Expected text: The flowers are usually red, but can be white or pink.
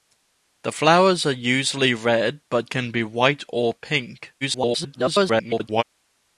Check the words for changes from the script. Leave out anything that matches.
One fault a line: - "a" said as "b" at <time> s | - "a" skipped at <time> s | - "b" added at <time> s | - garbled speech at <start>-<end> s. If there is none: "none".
- garbled speech at 4.4-5.8 s